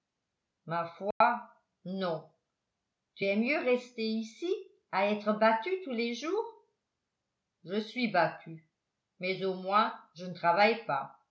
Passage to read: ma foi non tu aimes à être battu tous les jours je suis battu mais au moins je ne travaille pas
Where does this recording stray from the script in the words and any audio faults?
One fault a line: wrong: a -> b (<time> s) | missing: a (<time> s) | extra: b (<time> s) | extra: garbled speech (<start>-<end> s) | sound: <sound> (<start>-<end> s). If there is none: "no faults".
sound: dropout (1.1-1.2 s)
extra: mieux rester ici (3.4 s)